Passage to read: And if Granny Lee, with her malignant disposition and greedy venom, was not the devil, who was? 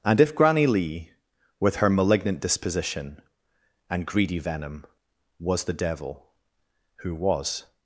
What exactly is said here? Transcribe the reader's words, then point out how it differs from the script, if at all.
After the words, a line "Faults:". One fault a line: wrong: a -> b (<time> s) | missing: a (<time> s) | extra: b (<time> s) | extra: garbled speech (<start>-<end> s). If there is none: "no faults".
And if Granny Lee, with her malignant disposition and greedy venom, was the devil, who was?
Faults:
missing: not (5.7 s)